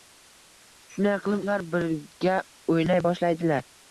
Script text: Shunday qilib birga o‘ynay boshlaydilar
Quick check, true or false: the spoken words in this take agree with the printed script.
false